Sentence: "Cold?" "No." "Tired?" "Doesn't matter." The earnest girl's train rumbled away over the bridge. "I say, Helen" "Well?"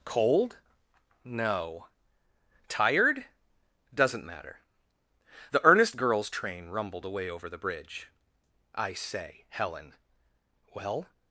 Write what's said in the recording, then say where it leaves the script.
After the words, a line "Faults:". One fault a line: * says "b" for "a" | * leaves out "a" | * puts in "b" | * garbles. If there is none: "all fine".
"Cold?" "No." "Tired?" "Doesn't matter." The earnest girl's train rumbled away over the bridge. "I say, Helen" "Well?"
Faults:
all fine